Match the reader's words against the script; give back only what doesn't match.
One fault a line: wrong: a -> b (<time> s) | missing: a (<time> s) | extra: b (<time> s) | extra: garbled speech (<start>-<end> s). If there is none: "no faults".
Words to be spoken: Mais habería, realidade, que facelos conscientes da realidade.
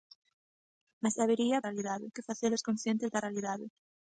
no faults